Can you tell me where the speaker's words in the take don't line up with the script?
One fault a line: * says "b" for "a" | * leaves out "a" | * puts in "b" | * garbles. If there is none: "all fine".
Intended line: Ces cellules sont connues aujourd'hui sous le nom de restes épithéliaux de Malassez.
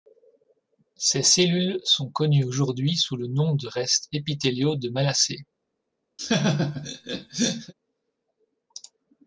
all fine